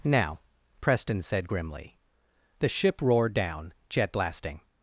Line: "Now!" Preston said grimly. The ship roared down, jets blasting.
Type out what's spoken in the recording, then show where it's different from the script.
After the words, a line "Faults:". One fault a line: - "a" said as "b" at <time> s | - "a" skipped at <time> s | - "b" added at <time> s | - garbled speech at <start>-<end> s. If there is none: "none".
"Now!" Preston said grimly. The ship roared down, jet blasting.
Faults:
- "jets" said as "jet" at 3.9 s